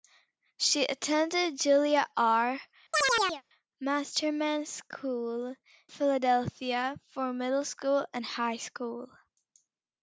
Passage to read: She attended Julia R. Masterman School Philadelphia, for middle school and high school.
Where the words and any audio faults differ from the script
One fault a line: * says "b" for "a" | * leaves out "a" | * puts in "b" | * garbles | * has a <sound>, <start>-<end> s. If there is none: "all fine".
* has a chirp, 2.9-3.4 s